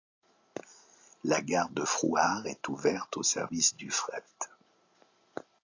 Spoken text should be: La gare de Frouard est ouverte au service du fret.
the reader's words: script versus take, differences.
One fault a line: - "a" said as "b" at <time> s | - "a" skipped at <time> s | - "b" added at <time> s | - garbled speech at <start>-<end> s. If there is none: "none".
none